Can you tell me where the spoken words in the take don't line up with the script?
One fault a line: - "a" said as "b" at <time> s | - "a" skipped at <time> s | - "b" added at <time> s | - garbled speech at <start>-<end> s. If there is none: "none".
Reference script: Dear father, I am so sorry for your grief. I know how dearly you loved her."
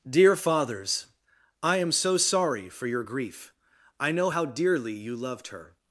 - "father" said as "fathers" at 0.3 s